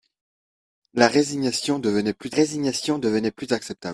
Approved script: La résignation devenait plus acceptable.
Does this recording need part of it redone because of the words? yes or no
yes